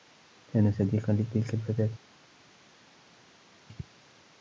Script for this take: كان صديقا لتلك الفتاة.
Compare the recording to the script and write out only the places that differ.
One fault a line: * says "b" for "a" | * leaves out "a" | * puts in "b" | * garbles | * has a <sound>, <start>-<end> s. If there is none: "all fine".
all fine